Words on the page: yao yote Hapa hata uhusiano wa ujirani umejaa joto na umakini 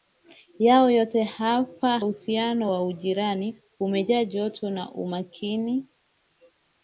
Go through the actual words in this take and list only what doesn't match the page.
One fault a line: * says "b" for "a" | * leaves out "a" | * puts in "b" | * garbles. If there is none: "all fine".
* leaves out "hata"